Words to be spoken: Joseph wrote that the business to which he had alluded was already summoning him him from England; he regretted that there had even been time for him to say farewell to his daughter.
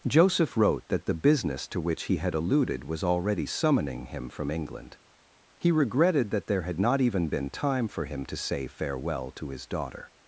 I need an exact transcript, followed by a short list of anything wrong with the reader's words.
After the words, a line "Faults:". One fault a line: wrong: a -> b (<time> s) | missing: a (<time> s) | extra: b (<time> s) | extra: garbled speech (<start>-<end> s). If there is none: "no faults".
Joseph wrote that the business to which he had alluded was already summoning him from England; he regretted that there had not even been time for him to say farewell to his daughter.
Faults:
missing: him (4.3 s)
extra: not (6.8 s)